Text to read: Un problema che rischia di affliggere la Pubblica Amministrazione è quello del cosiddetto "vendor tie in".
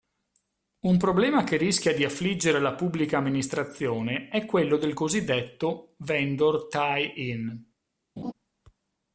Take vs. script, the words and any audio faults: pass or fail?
fail